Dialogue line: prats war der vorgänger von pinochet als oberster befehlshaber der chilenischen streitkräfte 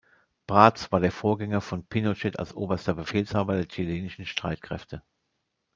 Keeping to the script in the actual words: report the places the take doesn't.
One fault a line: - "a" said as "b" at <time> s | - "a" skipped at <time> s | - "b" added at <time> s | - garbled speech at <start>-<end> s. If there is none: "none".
none